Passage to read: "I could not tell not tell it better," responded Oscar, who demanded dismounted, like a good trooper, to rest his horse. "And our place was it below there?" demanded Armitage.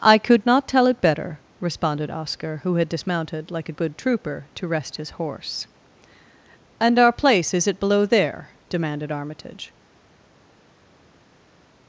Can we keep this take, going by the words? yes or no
no